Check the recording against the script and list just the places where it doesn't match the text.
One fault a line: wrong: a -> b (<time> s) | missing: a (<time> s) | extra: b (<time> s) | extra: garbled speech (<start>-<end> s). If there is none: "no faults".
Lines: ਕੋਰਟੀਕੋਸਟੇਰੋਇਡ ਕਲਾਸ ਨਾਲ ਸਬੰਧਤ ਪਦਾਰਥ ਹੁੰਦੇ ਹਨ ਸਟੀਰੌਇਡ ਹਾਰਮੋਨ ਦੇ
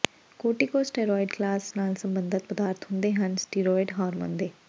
no faults